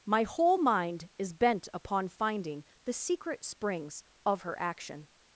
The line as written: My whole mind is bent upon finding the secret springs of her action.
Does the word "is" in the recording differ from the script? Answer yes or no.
no